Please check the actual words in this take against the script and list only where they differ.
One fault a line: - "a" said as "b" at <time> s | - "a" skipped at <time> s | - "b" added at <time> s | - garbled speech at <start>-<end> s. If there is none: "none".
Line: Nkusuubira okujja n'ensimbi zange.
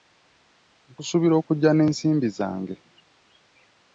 none